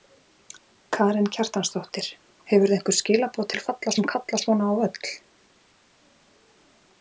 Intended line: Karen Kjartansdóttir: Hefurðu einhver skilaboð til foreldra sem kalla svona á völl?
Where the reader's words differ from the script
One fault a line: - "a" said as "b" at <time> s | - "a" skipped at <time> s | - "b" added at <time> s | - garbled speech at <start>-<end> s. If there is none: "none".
- "foreldra" said as "kalla" at 3.7 s